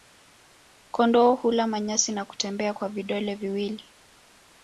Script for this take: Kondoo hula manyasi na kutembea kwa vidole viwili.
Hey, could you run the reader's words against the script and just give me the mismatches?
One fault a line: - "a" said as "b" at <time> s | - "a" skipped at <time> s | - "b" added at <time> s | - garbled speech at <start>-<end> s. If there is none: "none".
none